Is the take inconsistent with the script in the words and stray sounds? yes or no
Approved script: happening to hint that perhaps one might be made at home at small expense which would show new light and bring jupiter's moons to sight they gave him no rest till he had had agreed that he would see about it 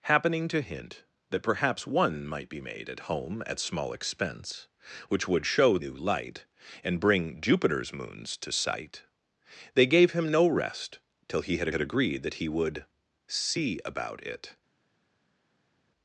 no